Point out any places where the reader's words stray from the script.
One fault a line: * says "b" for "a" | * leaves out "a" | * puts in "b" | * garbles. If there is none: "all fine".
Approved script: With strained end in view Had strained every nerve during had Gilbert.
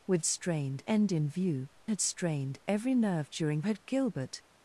all fine